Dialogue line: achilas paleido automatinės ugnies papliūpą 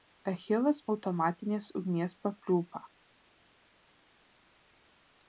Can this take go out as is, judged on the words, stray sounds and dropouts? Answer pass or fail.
fail